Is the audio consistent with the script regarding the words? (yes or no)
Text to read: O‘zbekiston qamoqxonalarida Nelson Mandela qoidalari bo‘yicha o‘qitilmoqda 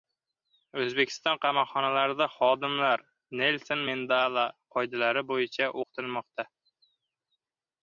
no